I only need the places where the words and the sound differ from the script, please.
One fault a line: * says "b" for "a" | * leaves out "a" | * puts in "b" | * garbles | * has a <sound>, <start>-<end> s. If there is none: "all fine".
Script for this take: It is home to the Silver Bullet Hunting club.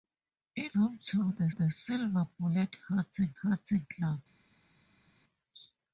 * leaves out "is"
* puts in "the"
* puts in "Hunting"